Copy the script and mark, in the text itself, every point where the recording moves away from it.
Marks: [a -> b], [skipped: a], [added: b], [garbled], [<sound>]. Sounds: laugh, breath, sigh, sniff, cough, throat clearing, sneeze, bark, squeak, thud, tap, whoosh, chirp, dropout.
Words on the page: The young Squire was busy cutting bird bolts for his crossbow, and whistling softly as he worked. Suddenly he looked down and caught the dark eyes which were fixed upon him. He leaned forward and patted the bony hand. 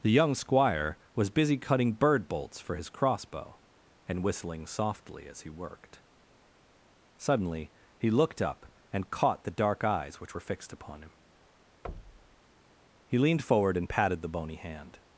The young Squire was busy cutting bird bolts for his crossbow, and whistling softly as he worked. Suddenly he looked [down -> up] and caught the dark eyes which were fixed upon him. [thud] He leaned forward and patted the bony hand.